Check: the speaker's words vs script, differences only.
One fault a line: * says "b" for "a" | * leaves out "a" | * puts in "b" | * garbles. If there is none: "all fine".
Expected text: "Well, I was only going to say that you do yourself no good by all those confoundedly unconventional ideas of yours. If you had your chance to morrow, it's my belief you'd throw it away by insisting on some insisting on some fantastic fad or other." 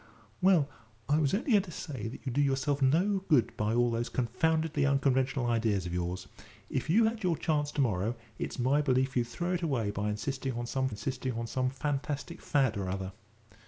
all fine